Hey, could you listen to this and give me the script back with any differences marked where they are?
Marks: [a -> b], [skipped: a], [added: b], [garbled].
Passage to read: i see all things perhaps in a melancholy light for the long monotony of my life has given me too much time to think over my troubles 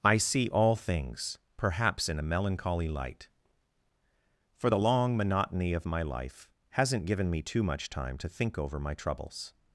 i see all things perhaps in a melancholy light for the long monotony of my life [has -> hasn't] given me too much time to think over my troubles